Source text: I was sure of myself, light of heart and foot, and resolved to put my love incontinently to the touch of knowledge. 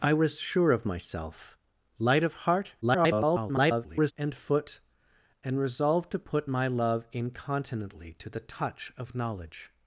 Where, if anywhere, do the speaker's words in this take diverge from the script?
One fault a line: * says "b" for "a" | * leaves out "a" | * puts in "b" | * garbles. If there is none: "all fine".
* garbles